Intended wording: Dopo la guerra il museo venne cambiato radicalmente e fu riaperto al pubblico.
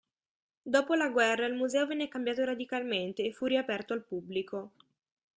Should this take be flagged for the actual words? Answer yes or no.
no